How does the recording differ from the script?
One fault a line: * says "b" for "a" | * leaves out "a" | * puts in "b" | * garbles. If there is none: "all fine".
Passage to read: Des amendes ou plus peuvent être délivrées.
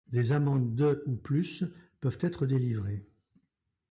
* puts in "de"